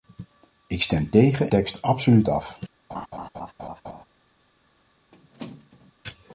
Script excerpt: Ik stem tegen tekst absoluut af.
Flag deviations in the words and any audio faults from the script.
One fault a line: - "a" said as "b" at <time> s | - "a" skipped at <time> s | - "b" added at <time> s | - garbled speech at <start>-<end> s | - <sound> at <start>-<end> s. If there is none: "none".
- laugh at 2.9-4.0 s
- squeak at 5.1-5.9 s